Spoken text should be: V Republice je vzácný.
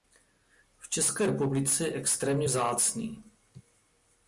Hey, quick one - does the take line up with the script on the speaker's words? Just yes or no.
no